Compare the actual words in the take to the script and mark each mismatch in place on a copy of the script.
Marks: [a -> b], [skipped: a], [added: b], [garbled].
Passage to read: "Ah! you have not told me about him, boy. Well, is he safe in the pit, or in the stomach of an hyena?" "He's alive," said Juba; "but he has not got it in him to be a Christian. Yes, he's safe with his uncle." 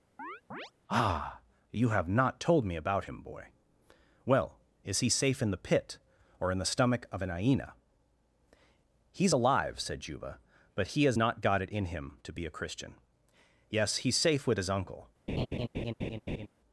"Ah! you have not told me about him, boy. Well, is he safe in the pit, or in the stomach of an hyena?" "He's alive," said Juba; "but he has not got it in him to be a Christian. Yes, he's safe with his uncle."